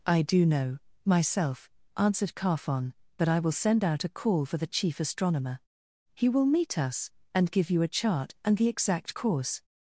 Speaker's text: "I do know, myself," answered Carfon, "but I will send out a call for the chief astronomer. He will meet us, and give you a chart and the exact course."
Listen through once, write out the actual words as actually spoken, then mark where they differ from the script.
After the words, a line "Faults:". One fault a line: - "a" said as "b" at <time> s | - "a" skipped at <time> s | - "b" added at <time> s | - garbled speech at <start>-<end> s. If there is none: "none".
"I do know, myself," answered Carfon, "but I will send out a call for the chief astronomer. He will meet us, and give you a chart and the exact course."
Faults:
none